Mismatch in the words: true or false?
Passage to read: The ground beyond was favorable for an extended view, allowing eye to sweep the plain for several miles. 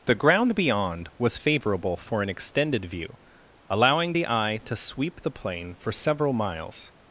true